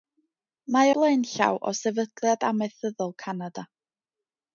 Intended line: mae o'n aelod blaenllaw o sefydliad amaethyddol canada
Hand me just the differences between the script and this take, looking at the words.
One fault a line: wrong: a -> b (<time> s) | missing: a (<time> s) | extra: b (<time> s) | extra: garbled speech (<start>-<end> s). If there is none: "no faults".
missing: o'n aelod (0.9 s)